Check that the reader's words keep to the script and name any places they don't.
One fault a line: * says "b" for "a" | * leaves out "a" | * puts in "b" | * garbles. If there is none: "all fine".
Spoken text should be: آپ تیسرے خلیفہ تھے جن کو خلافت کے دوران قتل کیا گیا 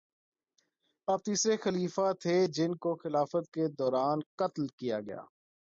all fine